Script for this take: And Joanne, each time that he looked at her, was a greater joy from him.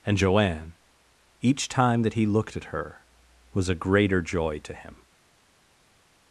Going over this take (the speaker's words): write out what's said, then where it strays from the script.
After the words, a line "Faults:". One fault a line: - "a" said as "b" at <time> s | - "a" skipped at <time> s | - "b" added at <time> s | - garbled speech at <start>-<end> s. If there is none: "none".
And Joanne, each time that he looked at her, was a greater joy to him.
Faults:
- "from" said as "to" at 4.6 s